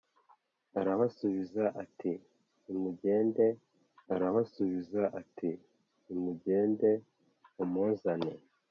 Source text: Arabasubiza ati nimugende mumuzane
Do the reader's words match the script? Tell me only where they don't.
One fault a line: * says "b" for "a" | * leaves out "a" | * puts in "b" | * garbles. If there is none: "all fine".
* puts in "arabasubiza ati nimugende"